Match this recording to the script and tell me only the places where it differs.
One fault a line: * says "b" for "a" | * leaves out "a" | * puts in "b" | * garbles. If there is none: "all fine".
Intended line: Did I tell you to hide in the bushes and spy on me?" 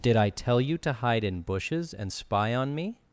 * leaves out "the"